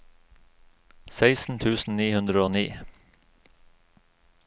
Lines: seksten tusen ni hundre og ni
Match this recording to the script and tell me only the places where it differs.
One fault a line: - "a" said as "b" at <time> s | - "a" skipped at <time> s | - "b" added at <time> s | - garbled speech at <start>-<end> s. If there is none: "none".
none